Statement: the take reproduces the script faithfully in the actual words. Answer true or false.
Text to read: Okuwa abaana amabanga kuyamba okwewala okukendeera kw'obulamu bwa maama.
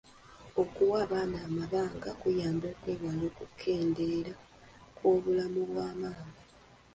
true